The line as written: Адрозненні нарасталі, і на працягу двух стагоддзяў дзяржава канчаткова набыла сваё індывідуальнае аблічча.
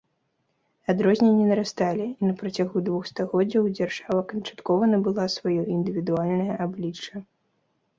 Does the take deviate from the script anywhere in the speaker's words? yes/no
no